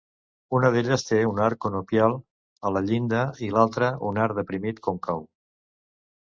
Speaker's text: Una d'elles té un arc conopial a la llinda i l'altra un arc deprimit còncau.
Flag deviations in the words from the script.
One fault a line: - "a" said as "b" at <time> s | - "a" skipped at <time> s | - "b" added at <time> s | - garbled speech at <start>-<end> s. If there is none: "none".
none